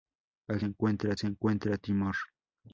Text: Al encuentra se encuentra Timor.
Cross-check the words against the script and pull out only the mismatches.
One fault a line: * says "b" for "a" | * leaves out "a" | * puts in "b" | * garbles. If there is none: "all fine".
all fine